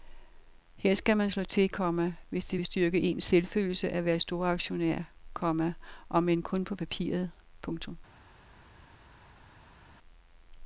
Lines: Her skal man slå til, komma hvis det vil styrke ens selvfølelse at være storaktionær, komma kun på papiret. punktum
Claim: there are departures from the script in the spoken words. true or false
true